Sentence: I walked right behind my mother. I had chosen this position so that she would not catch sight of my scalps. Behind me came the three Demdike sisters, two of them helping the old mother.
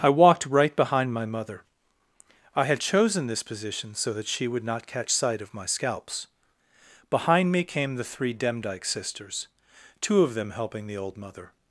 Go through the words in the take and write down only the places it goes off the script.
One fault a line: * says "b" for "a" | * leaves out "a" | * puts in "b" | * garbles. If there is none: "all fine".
all fine